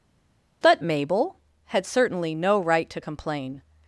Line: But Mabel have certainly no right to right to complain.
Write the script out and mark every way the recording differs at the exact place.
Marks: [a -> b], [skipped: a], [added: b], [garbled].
But Mabel [have -> had] certainly no right to [skipped: right to] complain.